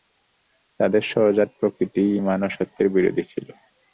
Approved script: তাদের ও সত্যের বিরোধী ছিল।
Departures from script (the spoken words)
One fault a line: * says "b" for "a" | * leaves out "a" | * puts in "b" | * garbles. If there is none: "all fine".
* puts in "সহজাত প্রকৃতিই ঈমান"